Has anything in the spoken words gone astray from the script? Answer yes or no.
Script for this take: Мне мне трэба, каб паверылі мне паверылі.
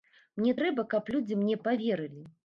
yes